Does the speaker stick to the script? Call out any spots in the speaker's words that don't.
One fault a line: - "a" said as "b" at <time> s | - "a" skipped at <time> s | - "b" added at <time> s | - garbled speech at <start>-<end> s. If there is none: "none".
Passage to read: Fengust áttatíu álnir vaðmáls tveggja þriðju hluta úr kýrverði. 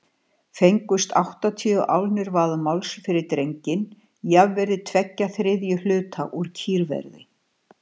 - "fyrir drenginn jafnvirði" added at 3.1 s